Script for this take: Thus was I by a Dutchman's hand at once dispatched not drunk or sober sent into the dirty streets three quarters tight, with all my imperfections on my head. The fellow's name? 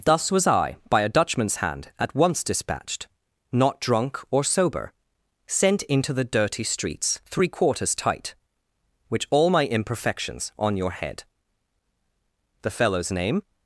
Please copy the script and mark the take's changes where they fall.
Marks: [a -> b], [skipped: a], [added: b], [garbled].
Thus was I by a Dutchman's hand at once dispatched not drunk or sober sent into the dirty streets three quarters tight, [with -> which] all my imperfections on [my -> your] head. The fellow's name?